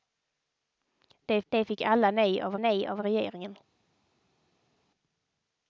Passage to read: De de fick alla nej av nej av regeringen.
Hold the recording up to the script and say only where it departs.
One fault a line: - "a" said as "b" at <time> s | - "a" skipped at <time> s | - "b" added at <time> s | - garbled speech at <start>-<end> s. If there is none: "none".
none